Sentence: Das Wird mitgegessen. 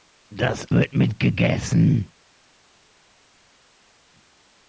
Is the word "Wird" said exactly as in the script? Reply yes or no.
yes